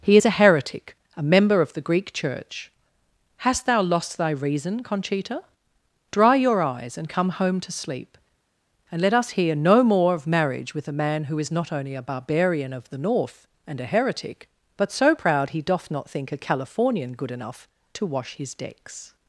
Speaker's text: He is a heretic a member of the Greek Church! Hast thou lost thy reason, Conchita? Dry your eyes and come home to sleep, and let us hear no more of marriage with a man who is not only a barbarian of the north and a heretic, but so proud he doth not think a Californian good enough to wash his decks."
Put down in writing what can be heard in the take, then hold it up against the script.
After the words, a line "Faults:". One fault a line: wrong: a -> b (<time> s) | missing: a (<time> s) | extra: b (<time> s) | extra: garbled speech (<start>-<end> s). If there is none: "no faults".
He is a heretic a member of the Greek Church! Hast thou lost thy reason, Conchita? Dry your eyes and come home to sleep, and let us hear no more of marriage with a man who is not only a barbarian of the north and a heretic, but so proud he doth not think a Californian good enough to wash his decks."
Faults:
no faults